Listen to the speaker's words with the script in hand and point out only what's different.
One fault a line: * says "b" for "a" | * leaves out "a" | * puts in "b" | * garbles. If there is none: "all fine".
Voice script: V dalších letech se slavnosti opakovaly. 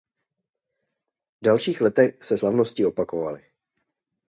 all fine